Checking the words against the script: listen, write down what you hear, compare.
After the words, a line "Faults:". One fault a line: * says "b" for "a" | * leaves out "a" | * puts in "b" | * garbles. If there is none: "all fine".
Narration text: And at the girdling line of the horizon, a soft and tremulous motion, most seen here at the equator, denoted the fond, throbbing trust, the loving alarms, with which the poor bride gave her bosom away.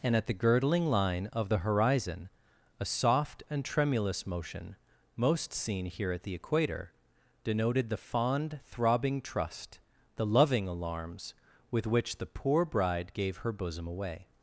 And at the girdling line of the horizon, a soft and tremulous motion, most seen here at the equator, denoted the fond, throbbing trust, the loving alarms, with which the poor bride gave her bosom away.
Faults:
all fine